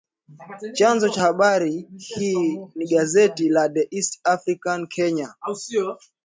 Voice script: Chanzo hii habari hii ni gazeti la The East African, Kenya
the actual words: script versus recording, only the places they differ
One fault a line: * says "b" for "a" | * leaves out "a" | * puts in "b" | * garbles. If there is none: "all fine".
* says "cha" for "hii"